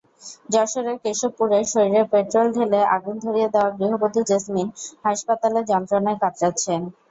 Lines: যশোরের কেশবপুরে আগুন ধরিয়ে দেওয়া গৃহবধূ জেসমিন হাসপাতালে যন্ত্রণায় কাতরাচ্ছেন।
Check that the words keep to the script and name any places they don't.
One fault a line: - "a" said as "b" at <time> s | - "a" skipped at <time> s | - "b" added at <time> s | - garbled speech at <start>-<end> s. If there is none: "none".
- "শরীরে পেট্রল ঢেলে" added at 1.7 s